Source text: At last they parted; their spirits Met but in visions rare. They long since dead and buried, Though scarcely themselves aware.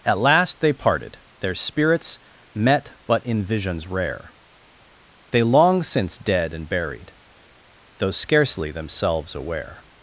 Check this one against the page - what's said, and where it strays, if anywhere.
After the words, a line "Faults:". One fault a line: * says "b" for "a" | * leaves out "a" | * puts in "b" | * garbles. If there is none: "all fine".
At last they parted; their spirits Met but in visions rare. They long since dead and buried, Though scarcely themselves aware.
Faults:
all fine